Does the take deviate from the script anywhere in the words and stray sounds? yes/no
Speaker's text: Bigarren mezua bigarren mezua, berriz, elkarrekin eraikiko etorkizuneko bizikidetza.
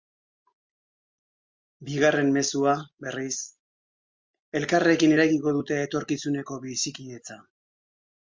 yes